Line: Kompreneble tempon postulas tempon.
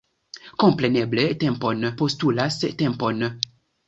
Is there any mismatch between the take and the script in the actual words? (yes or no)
no